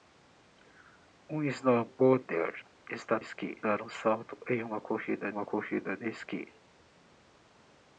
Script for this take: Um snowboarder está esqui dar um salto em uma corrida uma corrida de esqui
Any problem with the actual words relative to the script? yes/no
no